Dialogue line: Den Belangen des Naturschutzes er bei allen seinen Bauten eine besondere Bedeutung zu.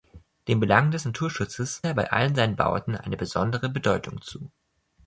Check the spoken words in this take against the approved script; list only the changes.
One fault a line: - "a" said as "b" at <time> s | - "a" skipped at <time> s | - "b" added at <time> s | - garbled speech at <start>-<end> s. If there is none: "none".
none